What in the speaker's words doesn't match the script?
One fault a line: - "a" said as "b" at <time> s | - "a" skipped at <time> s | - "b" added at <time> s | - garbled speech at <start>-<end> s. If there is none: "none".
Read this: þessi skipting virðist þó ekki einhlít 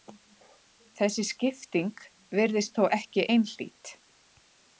none